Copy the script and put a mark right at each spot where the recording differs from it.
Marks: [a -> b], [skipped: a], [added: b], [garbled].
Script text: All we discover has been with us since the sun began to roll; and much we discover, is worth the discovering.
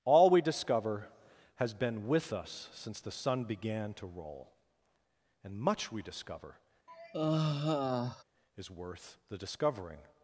All we discover has been with us since the sun began to roll; and much we discover, is worth the discovering.